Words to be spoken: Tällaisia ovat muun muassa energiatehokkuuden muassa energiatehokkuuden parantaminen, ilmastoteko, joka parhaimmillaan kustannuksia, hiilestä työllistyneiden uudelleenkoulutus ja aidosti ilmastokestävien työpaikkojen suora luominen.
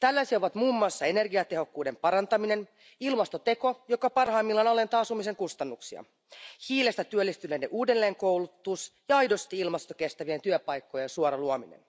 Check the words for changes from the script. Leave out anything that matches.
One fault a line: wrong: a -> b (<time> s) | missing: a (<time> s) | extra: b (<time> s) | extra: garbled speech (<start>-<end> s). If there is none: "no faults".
missing: muassa energiatehokkuuden (1.9 s)
extra: alentaa asumisen (4.7 s)